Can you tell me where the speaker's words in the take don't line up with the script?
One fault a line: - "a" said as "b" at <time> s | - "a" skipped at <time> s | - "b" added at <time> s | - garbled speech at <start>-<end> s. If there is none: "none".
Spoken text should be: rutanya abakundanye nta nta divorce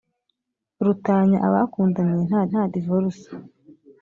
none